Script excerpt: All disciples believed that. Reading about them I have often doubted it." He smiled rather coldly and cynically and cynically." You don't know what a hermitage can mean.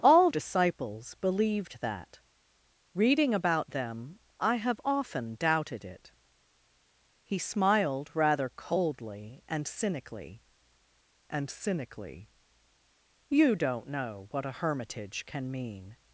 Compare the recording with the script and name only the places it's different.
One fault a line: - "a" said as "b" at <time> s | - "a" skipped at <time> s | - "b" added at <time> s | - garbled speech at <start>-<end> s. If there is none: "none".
none